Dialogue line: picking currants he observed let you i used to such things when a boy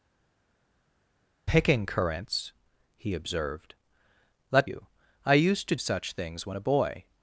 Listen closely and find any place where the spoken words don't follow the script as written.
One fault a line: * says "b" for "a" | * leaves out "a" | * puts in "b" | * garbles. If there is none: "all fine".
all fine